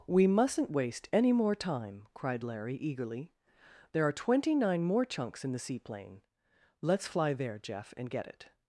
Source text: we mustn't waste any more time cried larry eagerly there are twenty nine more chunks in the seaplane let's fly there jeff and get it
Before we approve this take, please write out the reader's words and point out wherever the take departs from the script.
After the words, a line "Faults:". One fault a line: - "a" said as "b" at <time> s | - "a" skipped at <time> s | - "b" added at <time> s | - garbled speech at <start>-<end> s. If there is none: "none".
we mustn't waste any more time cried larry eagerly there are twenty nine more chunks in the seaplane let's fly there jeff and get it
Faults:
none